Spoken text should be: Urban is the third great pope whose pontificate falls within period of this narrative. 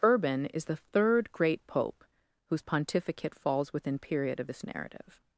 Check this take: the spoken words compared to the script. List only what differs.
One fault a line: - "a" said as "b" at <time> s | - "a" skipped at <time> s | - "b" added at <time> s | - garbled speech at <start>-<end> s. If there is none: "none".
none